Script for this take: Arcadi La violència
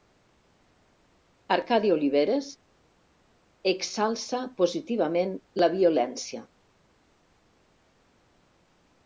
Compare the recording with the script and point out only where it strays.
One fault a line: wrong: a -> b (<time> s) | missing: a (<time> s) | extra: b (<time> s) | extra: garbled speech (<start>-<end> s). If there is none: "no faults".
extra: Oliveres exalça positivament (1.9 s)